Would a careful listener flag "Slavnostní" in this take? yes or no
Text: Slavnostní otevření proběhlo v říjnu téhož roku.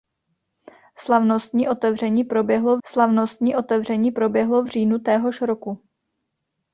no